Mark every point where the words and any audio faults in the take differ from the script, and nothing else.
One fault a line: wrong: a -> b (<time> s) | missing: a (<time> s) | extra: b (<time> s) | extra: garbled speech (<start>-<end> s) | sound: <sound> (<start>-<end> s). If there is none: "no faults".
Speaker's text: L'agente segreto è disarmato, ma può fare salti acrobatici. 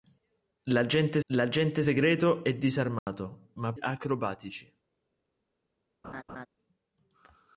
extra: l'agente (1.3 s)
sound: dropout (3.0-3.1 s)
missing: può fare salti (3.7 s)
sound: laugh (6.0-6.5 s)